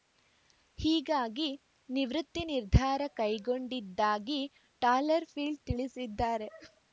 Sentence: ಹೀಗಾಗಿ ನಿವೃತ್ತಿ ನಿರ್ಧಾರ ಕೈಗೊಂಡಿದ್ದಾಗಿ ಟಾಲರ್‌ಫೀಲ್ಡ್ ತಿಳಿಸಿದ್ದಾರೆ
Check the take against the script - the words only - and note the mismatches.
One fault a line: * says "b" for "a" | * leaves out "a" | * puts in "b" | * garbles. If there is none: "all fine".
all fine